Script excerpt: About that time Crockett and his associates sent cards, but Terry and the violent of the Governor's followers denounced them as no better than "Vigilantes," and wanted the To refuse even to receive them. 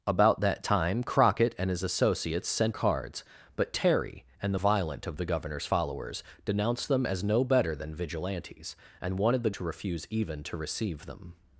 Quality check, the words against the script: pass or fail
pass